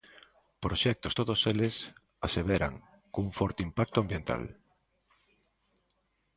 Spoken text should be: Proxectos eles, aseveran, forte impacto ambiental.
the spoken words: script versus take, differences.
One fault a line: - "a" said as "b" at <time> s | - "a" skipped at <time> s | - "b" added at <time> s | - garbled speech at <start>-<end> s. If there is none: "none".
- "todos" added at 1.2 s
- "cun" added at 3.1 s